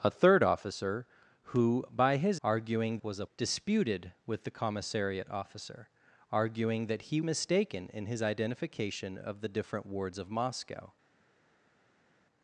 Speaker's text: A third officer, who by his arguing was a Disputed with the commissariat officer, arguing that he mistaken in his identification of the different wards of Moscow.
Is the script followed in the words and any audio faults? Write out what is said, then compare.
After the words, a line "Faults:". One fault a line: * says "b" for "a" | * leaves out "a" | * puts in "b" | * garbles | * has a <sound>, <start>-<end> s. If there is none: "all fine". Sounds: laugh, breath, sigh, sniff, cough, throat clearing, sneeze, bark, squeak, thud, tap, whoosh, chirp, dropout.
A third officer, who by his arguing was a Disputed with the commissariat officer, arguing that he mistaken in his identification of the different wards of Moscow.
Faults:
all fine